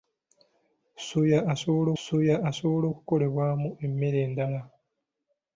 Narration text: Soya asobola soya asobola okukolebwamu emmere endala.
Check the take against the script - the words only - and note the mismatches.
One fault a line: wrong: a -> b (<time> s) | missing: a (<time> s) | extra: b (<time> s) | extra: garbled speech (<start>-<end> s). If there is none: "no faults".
no faults